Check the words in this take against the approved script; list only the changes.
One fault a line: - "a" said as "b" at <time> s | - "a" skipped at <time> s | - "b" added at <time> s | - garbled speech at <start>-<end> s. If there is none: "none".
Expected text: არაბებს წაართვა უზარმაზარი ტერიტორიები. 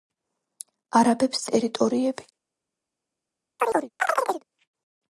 - "წაართვა უზარმაზარი" skipped at 1.4 s